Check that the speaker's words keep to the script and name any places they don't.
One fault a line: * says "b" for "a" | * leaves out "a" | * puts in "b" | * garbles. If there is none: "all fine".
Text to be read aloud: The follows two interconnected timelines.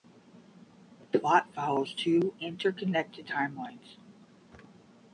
* puts in "plot"